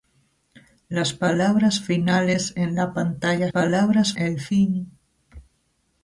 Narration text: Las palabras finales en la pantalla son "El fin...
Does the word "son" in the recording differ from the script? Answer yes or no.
yes